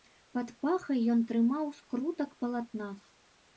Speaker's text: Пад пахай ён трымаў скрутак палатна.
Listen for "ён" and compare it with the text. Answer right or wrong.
right